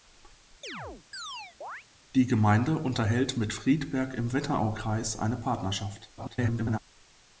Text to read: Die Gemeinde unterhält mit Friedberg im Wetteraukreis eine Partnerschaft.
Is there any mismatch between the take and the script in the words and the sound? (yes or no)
yes